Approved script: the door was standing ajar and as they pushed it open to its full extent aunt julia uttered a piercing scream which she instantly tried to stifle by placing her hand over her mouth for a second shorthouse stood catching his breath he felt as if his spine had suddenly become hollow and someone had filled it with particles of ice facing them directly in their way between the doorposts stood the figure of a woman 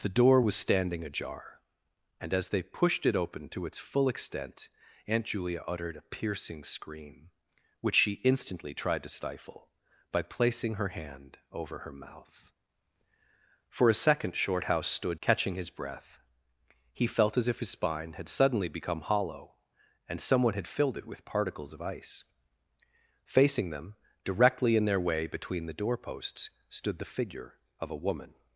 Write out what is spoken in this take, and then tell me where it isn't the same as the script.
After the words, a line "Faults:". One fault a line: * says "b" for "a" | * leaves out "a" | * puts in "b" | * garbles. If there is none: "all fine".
the door was standing ajar and as they pushed it open to its full extent aunt julia uttered a piercing scream which she instantly tried to stifle by placing her hand over her mouth for a second shorthouse stood catching his breath he felt as if his spine had suddenly become hollow and someone had filled it with particles of ice facing them directly in their way between the doorposts stood the figure of a woman
Faults:
all fine